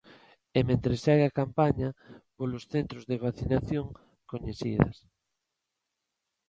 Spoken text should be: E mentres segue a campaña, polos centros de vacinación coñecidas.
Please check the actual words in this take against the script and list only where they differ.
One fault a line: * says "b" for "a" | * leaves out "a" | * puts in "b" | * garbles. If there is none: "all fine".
all fine